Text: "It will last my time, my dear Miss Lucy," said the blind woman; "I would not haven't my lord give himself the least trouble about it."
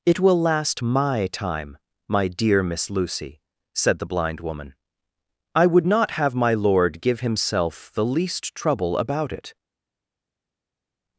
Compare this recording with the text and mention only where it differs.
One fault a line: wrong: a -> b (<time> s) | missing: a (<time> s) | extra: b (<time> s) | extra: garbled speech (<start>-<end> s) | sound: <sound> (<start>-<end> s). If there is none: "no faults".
wrong: haven't -> have (6.1 s)